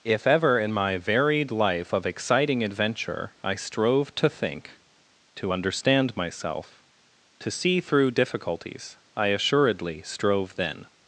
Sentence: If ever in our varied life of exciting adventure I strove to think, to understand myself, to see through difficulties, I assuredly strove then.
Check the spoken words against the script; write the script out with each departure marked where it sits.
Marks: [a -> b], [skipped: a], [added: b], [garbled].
If ever in [our -> my] varied life of exciting adventure I strove to think, to understand myself, to see through difficulties, I assuredly strove then.